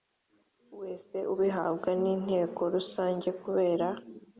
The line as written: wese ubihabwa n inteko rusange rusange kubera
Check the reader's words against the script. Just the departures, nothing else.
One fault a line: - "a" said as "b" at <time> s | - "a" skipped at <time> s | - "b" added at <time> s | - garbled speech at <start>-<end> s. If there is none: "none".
- "rusange" skipped at 3.3 s